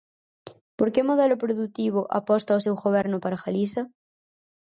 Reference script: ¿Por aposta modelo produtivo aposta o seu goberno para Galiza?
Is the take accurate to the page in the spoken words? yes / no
no